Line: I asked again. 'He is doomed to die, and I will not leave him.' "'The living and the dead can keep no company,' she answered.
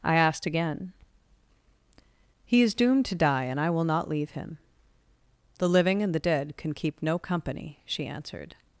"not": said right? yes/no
yes